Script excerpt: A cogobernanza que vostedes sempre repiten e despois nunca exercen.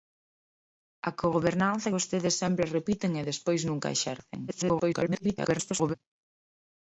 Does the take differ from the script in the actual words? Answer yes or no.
yes